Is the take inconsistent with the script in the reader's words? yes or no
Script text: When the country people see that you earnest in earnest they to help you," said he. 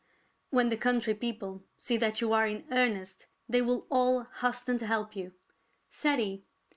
yes